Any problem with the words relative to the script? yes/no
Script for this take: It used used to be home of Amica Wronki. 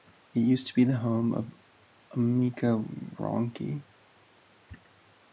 yes